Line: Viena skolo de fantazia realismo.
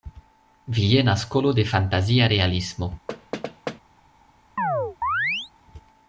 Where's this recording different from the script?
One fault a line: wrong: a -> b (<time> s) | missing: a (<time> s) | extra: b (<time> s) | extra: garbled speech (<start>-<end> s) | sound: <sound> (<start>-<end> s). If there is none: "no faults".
sound: thud (3.1-3.8 s)
sound: chirp (4.6-5.5 s)